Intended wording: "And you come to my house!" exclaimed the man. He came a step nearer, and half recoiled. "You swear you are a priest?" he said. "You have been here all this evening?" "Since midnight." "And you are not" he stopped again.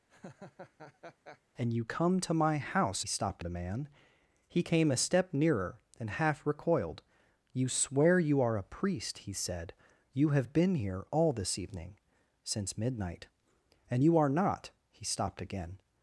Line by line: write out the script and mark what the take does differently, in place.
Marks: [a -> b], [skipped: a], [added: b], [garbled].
"And you come to my house!" [exclaimed -> stopped] the man. He came a step nearer, and half recoiled. "You swear you are a priest?" he said. "You have been here all this evening?" "Since midnight." "And you are not" he stopped again.